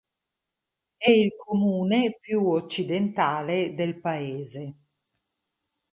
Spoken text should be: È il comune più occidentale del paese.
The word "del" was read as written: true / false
true